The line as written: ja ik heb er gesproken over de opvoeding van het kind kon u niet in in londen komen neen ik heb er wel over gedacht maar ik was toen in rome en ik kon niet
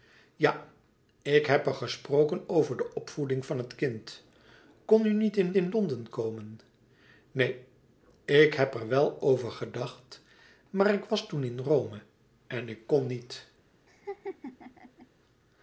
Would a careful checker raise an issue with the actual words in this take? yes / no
no